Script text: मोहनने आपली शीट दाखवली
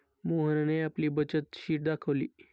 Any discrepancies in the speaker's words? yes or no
yes